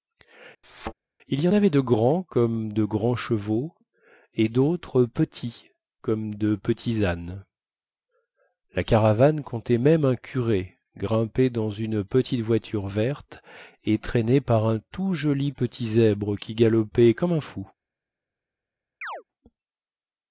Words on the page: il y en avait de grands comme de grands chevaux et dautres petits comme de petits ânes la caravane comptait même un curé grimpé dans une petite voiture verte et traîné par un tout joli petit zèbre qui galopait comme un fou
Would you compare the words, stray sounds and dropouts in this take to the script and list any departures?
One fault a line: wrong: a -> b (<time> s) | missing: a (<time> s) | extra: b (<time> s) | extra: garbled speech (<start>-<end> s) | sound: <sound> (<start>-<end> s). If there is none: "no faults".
sound: thud (0.6-0.9 s)
sound: chirp (19.0-19.2 s)